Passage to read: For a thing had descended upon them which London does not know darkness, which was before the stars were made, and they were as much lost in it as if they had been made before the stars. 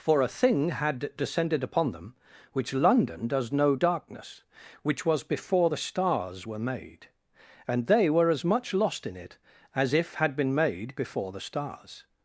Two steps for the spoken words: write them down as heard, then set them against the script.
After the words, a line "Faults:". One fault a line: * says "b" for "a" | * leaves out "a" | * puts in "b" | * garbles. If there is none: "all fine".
For a thing had descended upon them which London does know darkness, which was before the stars were made, and they were as much lost in it as if had been made before the stars.
Faults:
* leaves out "not"
* leaves out "they"